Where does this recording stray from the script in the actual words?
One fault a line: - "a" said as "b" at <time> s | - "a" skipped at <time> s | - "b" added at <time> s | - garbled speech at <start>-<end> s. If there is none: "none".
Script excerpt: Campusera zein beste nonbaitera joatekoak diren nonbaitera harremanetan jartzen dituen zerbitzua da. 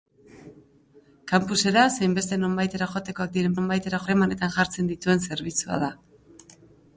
none